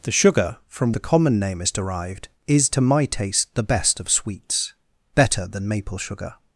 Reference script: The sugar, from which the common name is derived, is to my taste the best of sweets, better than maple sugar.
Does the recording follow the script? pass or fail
fail